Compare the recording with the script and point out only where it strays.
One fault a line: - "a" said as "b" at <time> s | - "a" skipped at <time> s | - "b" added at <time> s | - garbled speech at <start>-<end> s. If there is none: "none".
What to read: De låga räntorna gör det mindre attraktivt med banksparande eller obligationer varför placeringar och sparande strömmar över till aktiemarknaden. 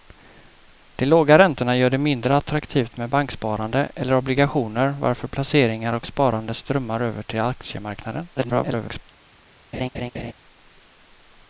- garbled speech at 8.4-9.0 s